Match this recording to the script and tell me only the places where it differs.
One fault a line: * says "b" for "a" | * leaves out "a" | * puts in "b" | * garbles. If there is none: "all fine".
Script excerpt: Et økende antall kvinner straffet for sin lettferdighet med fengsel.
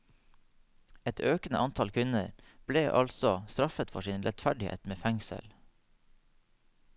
* puts in "ble altså"